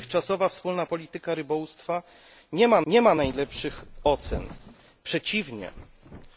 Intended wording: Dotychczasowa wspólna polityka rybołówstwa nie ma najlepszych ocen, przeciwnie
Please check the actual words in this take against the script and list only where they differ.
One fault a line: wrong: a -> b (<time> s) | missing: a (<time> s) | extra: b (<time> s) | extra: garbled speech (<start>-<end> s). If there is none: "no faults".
extra: nie ma (2.9 s)